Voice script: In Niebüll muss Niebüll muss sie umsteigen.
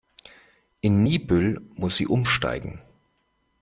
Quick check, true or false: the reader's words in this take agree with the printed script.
false